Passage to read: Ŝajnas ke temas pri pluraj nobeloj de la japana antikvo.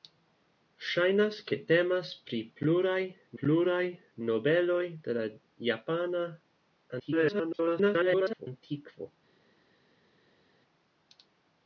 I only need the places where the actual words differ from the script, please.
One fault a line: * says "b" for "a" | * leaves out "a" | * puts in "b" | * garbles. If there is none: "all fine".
* puts in "pluraj"
* garbles